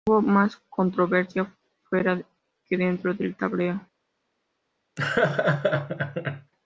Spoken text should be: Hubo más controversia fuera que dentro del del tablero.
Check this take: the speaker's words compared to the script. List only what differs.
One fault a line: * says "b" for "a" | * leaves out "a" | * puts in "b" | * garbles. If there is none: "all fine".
* leaves out "del"